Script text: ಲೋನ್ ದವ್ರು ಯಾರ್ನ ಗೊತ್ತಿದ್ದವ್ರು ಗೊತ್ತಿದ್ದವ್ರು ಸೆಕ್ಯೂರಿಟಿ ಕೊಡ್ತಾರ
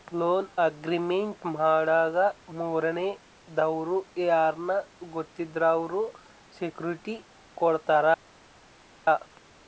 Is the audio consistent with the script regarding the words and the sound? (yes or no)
no